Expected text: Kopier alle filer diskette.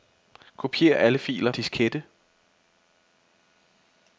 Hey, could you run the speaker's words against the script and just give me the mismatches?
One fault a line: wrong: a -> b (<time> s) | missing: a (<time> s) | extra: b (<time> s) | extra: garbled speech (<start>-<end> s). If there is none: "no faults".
no faults